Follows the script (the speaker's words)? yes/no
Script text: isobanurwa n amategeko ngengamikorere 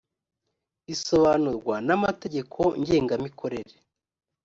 yes